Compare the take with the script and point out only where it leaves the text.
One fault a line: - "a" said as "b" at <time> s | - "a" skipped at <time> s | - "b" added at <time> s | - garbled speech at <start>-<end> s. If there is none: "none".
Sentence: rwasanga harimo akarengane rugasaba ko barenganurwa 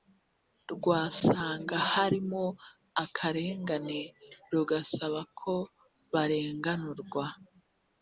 none